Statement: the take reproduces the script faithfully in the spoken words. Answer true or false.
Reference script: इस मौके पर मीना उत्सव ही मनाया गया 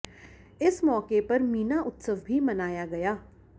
false